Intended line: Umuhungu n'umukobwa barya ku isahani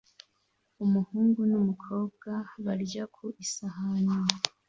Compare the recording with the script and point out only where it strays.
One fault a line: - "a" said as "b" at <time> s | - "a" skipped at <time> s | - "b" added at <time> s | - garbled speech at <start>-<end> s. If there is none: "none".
none